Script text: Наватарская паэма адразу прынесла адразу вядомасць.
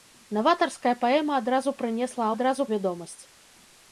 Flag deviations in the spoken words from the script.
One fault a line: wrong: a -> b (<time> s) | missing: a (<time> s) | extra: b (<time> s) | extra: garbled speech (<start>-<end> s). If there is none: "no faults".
no faults